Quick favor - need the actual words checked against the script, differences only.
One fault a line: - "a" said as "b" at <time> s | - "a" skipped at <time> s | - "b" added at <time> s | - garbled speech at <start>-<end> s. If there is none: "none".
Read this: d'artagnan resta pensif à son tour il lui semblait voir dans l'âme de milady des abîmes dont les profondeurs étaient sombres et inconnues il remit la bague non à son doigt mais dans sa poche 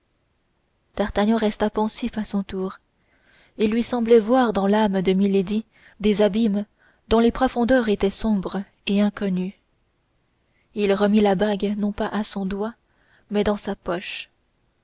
- "pas" added at 11.9 s